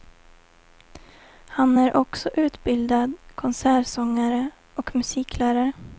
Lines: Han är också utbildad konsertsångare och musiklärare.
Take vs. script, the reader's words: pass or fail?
pass